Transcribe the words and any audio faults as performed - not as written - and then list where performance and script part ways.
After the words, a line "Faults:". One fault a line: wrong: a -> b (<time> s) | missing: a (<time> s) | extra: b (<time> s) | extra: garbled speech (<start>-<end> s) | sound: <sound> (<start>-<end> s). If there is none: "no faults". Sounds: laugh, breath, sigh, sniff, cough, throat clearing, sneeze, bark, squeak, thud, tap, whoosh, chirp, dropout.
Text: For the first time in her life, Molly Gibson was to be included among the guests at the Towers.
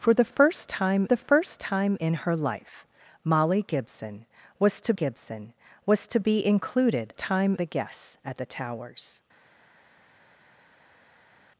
For the first time the first time in her life, Molly Gibson was to Gibson was to be included time the guests at the Towers.
Faults:
extra: the first time (1.1 s)
extra: Gibson was to (4.9 s)
wrong: among -> time (7.2 s)